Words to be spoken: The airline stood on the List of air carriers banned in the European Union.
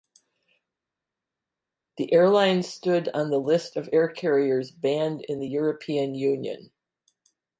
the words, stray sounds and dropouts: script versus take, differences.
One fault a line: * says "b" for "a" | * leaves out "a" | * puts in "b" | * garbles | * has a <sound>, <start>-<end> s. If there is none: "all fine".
all fine